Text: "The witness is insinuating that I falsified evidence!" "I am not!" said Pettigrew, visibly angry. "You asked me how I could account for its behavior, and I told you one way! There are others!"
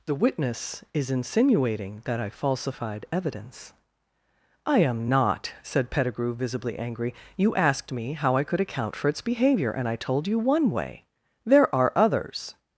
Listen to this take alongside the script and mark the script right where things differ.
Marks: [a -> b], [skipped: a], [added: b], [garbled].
"The witness is insinuating that I falsified evidence!" "I am not!" said Pettigrew, visibly angry. "You asked me how I could account for its behavior, and I told you one way! There are others!"